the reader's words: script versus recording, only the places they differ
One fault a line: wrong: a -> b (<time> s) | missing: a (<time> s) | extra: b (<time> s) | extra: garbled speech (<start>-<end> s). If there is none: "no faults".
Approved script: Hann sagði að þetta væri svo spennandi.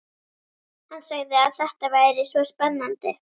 no faults